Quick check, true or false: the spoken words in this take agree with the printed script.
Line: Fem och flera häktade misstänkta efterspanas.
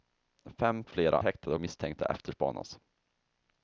true